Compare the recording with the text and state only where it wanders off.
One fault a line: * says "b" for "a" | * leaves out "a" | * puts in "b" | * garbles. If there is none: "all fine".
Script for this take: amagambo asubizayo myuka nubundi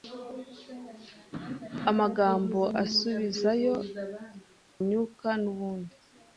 all fine